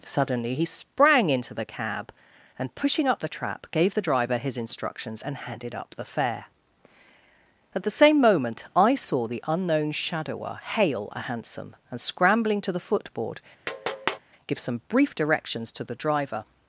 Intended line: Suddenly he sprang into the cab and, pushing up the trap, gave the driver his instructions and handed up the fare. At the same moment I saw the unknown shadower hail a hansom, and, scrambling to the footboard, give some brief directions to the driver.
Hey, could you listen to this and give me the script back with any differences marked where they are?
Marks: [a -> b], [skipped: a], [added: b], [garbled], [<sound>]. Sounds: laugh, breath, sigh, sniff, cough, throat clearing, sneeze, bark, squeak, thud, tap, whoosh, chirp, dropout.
Suddenly he sprang into the cab and, pushing up the trap, gave the driver his instructions and handed up the fare. At the same moment I saw the unknown shadower hail a hansom, and, scrambling to the footboard, [tap] give some brief directions to the driver.